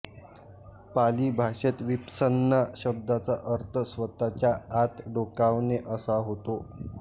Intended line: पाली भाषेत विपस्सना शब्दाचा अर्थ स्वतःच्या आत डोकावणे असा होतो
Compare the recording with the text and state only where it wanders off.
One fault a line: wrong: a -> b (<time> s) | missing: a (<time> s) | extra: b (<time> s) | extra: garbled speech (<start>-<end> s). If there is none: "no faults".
no faults